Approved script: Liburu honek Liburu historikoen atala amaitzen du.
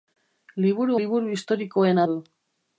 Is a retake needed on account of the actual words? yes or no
yes